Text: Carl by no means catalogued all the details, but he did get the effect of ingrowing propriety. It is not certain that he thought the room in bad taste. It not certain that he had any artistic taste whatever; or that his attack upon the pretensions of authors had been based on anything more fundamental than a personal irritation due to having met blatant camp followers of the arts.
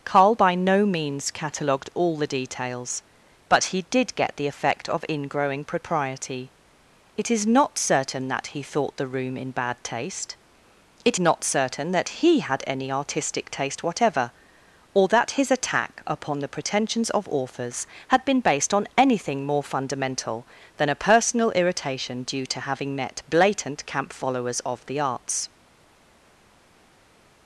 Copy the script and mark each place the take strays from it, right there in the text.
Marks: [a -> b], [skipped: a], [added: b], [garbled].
Carl by no means catalogued all the details, but he did get the effect of ingrowing propriety. It is not certain that he thought the room in bad taste. It not certain that he had any artistic taste whatever; or that his attack upon the pretensions of authors had been based on anything more fundamental than a personal irritation due to having met blatant camp followers of the arts.